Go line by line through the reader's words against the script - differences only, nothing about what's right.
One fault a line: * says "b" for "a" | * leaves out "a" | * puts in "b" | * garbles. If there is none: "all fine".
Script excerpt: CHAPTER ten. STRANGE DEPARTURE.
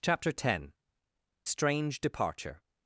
all fine